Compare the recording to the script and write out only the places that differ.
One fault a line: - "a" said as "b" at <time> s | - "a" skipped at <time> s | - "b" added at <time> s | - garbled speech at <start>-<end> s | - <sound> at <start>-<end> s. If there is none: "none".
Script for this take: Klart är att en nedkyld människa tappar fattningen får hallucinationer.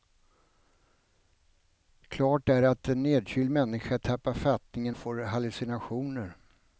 none